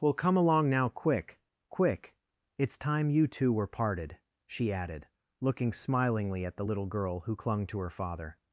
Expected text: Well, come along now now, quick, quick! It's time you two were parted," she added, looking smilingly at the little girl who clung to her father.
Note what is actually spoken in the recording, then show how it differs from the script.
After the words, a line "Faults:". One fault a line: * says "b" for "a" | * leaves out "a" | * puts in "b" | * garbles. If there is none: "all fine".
Well, come along now, quick, quick! It's time you two were parted," she added, looking smilingly at the little girl who clung to her father.
Faults:
* leaves out "now"